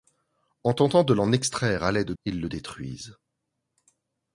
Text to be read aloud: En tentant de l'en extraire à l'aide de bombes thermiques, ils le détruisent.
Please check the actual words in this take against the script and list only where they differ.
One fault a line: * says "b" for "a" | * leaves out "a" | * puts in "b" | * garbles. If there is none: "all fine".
* leaves out "de bombes thermiques"